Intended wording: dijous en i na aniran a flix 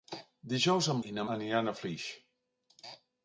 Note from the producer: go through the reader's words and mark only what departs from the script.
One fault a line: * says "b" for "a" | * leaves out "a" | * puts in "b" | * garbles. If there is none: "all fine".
all fine